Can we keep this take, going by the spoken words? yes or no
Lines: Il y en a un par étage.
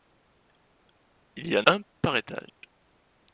no